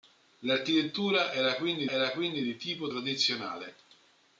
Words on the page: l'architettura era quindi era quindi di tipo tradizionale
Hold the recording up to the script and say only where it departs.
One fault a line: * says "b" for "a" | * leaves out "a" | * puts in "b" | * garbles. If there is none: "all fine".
all fine